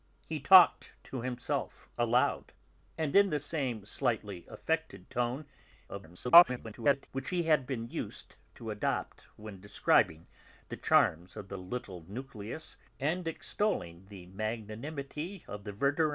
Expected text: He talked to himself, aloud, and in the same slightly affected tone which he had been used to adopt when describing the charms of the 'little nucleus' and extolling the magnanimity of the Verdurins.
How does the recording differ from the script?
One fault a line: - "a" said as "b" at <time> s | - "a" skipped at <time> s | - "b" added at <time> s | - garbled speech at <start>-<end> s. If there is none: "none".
- garbled speech at 5.9-7.1 s